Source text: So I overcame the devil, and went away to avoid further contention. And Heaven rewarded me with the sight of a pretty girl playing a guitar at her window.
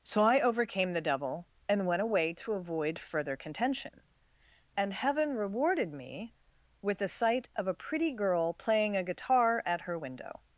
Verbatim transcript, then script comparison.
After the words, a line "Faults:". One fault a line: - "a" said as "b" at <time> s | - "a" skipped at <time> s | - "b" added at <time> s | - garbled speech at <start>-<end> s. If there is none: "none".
So I overcame the devil, and went away to avoid further contention. And Heaven rewarded me with the sight of a pretty girl playing a guitar at her window.
Faults:
none